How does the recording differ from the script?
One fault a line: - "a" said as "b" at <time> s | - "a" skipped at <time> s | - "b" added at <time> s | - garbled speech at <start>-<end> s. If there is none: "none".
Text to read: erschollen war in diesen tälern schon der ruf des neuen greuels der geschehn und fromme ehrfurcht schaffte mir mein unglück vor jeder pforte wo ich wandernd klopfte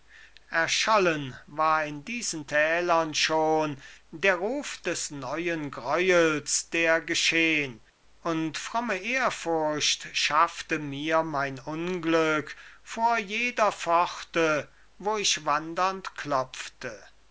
none